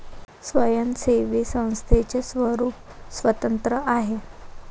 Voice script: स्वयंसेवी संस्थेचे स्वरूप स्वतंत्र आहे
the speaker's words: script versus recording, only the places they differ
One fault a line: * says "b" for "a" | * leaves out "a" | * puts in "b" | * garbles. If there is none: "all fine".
all fine